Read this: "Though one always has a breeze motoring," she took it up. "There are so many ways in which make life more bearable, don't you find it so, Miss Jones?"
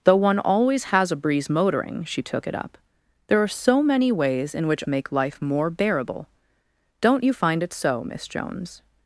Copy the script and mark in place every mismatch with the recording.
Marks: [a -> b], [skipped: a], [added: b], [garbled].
"Though one always has a breeze motoring," she took it up. "There are so many ways in which make life more bearable, don't you find it so, Miss Jones?"